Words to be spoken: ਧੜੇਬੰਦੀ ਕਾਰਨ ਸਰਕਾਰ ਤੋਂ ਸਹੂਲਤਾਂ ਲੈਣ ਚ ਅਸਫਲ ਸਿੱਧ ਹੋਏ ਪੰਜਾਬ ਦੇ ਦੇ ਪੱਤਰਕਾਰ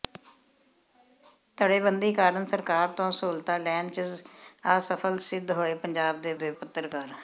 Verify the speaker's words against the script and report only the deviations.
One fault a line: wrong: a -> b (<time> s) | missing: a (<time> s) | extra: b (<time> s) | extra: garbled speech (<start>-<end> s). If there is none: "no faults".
no faults